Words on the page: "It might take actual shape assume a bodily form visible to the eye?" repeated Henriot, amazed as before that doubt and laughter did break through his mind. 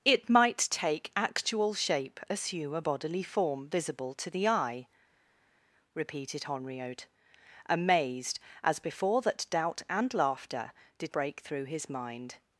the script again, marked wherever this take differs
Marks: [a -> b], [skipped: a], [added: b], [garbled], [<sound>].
"It might take actual shape assume a bodily form visible to the eye?" repeated Henriot, amazed as before that doubt and laughter did break through his mind.